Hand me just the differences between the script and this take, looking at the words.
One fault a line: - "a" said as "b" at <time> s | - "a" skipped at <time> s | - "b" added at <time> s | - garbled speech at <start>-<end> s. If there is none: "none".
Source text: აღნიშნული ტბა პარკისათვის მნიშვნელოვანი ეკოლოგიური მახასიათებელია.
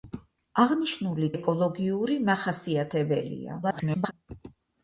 - "ტბა პარკისათვის მნიშვნელოვანი" skipped at 1.3 s
- garbled speech at 3.6-4.1 s